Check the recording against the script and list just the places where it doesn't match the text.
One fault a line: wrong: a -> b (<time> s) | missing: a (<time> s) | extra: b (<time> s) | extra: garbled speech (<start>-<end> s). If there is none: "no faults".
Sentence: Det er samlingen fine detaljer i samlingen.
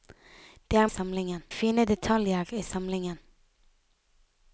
no faults